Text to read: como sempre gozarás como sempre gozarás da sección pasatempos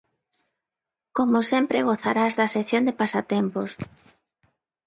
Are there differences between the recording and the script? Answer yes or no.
yes